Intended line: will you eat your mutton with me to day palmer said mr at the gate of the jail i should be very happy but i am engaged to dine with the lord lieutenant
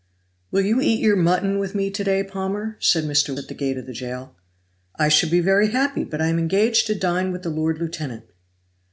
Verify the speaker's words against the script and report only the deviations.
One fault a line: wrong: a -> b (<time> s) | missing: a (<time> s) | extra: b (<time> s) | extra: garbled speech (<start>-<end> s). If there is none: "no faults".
no faults